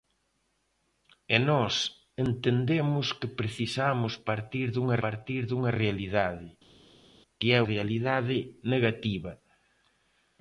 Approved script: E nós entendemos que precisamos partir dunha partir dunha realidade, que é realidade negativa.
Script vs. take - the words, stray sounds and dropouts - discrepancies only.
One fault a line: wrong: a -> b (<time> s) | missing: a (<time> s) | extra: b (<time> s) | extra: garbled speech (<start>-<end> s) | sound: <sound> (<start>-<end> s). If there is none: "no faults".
no faults